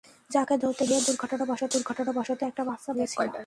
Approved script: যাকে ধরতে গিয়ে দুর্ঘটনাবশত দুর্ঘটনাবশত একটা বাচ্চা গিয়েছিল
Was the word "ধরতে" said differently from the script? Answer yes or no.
no